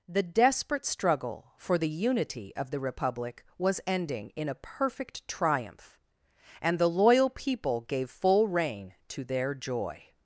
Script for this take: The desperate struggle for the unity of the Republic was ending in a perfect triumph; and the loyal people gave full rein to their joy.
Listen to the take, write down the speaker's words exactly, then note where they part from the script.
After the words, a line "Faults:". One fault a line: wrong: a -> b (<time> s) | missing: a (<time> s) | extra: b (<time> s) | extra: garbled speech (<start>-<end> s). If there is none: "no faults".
The desperate struggle for the unity of the Republic was ending in a perfect triumph; and the loyal people gave full rein to their joy.
Faults:
no faults